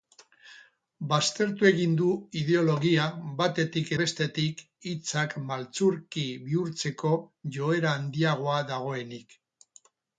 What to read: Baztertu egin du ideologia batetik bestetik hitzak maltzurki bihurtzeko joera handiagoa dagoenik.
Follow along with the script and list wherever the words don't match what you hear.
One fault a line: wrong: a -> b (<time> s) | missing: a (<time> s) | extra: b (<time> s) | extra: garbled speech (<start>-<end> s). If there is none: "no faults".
no faults